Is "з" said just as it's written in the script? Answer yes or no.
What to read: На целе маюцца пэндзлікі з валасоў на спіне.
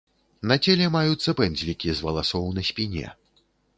yes